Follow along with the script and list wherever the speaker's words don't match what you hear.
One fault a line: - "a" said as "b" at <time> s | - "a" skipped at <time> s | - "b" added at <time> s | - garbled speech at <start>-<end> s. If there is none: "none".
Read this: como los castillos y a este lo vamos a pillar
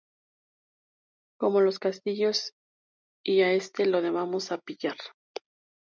none